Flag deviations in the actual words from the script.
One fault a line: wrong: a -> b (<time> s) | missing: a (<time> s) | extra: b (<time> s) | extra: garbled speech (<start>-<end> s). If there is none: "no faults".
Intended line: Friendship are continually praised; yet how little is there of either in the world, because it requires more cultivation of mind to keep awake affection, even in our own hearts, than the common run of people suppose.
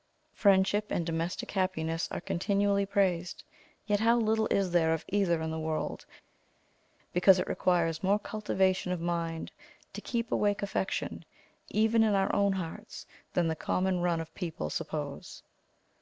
extra: and domestic happiness (0.9 s)